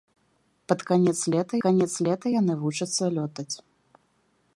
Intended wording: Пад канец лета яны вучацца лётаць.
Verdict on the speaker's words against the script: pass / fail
fail